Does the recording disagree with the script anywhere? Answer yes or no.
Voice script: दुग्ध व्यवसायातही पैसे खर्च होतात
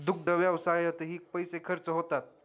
no